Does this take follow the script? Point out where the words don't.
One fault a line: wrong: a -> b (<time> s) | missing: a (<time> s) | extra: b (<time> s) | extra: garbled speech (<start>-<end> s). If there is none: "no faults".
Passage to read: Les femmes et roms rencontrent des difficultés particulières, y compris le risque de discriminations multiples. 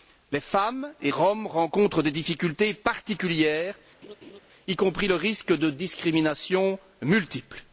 no faults